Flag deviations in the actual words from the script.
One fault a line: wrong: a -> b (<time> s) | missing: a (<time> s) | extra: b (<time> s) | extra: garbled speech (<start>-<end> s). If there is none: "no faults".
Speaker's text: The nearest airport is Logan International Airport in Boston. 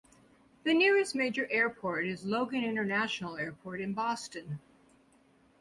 extra: major (1.1 s)